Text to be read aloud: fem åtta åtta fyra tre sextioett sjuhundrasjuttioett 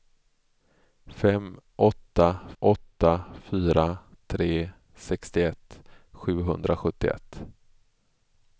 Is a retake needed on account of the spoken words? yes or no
no